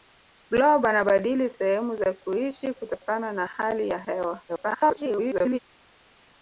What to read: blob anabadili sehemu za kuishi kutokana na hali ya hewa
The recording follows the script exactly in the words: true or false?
false